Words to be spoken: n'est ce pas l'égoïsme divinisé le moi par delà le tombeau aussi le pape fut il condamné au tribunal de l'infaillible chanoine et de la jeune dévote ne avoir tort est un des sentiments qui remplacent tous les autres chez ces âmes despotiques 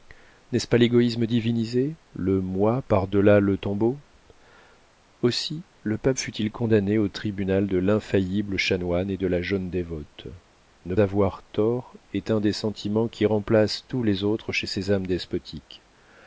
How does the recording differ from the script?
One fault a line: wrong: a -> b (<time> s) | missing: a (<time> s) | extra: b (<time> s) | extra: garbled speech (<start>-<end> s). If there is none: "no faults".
no faults